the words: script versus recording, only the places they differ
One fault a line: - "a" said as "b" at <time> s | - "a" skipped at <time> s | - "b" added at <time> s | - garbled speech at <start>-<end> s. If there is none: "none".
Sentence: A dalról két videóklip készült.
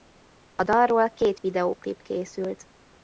none